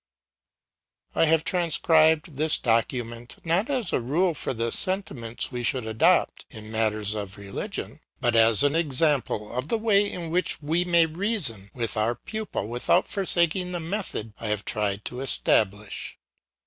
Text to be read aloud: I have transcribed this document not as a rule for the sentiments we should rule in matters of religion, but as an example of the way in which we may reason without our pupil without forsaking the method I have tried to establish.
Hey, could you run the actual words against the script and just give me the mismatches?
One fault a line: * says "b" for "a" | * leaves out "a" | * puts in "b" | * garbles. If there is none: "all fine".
* says "adopt" for "rule"
* says "with" for "without"